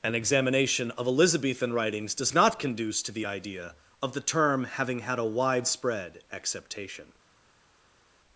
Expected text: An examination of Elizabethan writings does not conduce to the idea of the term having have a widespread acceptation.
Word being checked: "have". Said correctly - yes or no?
no